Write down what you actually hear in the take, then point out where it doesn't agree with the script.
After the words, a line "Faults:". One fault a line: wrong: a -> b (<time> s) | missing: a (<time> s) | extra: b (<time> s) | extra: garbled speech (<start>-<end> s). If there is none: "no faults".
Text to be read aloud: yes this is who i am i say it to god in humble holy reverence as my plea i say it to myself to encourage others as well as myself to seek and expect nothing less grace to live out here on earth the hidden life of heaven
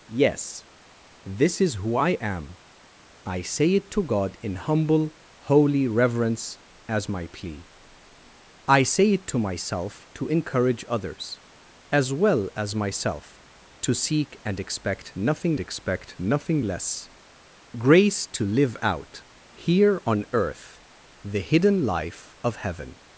yes this is who i am i say it to god in humble holy reverence as my plea i say it to myself to encourage others as well as myself to seek and expect nothing expect nothing less grace to live out here on earth the hidden life of heaven
Faults:
extra: expect nothing (15.6 s)